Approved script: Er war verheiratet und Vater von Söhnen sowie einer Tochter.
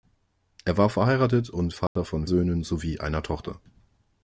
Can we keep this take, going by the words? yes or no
yes